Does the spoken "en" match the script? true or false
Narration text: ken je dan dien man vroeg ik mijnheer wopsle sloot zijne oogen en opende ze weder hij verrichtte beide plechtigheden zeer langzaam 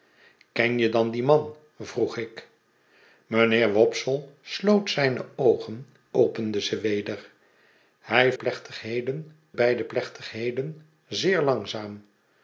false